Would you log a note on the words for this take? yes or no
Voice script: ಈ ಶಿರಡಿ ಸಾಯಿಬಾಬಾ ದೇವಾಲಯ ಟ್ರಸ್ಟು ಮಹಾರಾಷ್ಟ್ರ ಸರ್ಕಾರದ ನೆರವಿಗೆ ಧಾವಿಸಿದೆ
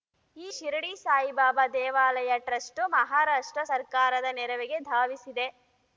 no